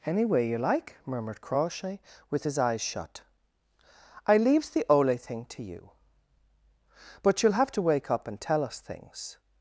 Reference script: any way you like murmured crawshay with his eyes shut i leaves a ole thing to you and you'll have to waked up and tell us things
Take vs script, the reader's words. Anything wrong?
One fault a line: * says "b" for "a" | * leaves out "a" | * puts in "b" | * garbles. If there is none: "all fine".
* says "the" for "a"
* says "but" for "and"
* says "wake" for "waked"